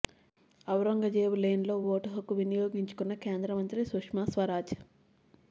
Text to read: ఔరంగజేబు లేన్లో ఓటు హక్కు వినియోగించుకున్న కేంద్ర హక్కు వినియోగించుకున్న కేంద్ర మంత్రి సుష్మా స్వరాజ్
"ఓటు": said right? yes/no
yes